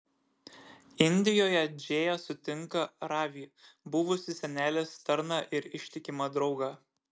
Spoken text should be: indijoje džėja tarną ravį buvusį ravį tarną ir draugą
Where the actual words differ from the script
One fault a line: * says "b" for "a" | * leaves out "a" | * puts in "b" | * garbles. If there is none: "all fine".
* says "sutinka" for "tarną"
* says "senelės" for "ravį"
* puts in "ištikimą"